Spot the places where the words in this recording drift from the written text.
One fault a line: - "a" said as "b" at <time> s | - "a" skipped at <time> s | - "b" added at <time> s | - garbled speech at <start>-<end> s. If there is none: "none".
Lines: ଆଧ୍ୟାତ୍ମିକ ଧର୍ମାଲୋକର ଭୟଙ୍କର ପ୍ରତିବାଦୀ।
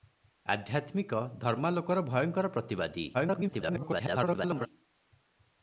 - garbled speech at 3.1-4.7 s